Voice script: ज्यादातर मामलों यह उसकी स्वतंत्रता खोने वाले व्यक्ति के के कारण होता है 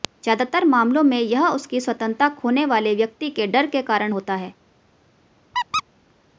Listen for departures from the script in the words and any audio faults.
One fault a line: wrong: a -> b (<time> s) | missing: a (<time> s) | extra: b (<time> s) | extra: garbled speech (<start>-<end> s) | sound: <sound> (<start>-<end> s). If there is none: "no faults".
extra: में (1.0 s)
extra: डर (3.5 s)
sound: squeak (5.5-5.8 s)